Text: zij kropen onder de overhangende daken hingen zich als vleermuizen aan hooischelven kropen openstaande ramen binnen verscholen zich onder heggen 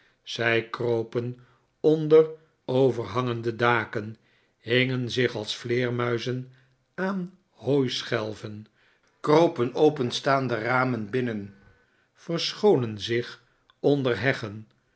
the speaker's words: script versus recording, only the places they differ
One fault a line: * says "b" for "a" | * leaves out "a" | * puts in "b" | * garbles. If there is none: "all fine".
* leaves out "de"